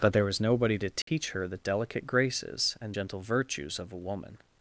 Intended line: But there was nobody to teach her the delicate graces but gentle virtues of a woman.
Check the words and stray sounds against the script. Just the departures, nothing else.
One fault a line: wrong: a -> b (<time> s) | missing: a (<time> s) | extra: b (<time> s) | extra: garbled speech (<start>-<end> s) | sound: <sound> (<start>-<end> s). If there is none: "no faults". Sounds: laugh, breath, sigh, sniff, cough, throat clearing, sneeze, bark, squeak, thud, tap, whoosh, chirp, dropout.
sound: dropout (1.0-1.1 s)
wrong: but -> and (2.8 s)